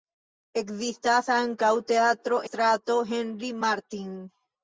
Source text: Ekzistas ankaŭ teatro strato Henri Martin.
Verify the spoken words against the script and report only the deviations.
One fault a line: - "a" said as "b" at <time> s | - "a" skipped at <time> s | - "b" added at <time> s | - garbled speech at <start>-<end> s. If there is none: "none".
none